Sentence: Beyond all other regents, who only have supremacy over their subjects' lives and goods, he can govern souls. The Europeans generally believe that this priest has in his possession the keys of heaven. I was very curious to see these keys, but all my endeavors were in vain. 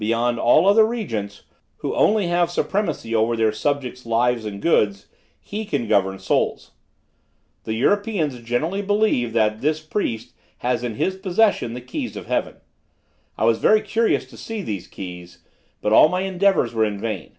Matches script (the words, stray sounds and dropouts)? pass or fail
pass